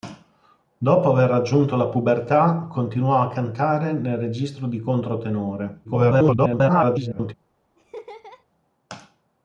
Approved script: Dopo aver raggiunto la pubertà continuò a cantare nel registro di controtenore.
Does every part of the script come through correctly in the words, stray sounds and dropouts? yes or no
no